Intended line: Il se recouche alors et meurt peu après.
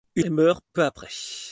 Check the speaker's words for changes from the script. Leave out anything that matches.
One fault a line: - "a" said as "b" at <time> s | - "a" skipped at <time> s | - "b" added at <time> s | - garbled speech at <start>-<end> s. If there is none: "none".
- "se recouche alors" skipped at 0.2 s
- "peu" skipped at 0.6 s